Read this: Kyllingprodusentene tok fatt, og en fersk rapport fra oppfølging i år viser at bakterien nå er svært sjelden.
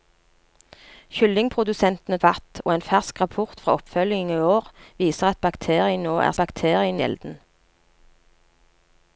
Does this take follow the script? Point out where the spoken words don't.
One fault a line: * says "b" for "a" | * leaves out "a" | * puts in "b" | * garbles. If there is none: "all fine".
* leaves out "tok"
* says "bakterien" for "svært"